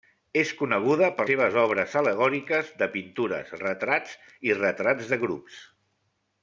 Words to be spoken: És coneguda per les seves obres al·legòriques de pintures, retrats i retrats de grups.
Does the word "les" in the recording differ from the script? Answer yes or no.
yes